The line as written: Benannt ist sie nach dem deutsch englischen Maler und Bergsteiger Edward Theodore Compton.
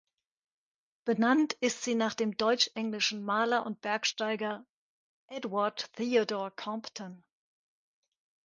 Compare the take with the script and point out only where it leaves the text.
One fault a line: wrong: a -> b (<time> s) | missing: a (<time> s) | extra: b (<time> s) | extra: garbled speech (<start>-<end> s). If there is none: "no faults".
no faults